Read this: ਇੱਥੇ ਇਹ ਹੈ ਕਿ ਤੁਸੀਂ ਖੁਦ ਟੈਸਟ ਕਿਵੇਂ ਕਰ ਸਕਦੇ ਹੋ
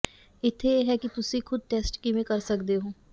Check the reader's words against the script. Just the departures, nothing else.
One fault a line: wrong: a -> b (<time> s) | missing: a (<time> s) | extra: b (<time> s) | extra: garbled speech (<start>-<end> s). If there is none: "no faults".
no faults